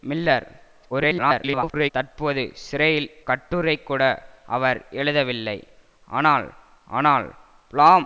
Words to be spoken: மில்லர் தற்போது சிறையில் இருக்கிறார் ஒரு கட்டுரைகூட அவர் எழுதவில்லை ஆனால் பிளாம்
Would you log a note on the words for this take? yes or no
yes